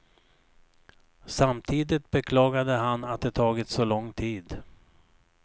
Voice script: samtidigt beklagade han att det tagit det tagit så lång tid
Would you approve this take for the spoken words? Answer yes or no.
no